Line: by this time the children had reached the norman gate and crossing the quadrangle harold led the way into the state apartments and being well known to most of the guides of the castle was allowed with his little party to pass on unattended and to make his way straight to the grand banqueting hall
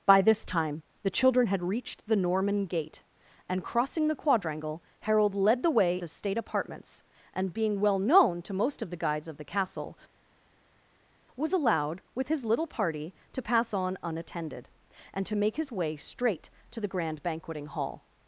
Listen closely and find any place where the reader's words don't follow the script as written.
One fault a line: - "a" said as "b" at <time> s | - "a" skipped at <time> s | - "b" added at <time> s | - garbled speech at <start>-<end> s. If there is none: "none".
- "into" skipped at 6.0 s